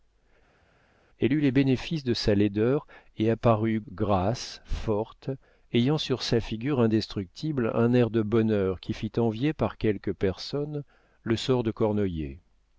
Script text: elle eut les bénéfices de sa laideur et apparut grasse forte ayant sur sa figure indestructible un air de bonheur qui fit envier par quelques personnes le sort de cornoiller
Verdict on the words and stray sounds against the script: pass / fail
pass